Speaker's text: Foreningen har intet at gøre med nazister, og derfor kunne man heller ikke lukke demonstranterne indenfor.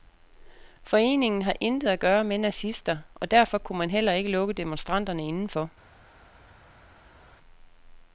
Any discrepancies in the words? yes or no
no